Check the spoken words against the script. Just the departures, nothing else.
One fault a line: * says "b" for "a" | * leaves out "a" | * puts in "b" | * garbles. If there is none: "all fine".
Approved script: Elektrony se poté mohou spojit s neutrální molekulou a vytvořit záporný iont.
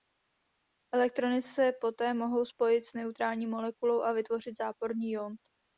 all fine